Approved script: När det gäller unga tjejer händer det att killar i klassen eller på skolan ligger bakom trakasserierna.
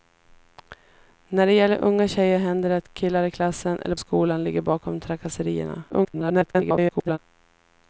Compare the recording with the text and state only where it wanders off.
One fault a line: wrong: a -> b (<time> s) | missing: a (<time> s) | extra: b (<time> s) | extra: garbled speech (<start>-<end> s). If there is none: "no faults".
missing: på (4.0 s)
extra: garbled speech (5.9-7.2 s)